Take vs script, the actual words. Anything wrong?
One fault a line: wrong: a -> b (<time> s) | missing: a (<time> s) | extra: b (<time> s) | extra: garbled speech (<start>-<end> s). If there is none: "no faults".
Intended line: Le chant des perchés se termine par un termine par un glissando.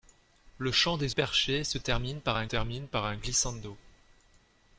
no faults